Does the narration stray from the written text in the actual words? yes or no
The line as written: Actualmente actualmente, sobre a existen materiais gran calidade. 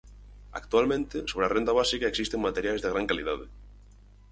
yes